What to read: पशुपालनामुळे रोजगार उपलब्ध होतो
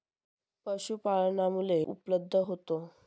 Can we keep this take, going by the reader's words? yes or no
no